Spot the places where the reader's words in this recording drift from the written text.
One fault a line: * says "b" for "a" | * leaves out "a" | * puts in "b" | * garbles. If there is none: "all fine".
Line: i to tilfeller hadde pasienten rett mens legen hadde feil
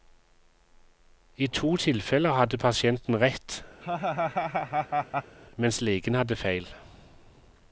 all fine